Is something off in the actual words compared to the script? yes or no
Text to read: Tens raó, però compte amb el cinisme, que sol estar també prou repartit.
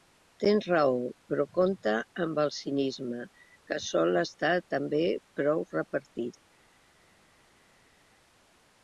no